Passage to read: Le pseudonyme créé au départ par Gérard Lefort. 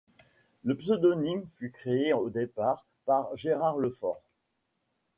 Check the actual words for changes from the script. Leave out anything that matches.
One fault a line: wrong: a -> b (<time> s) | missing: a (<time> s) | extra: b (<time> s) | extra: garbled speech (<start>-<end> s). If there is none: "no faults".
extra: fut (1.5 s)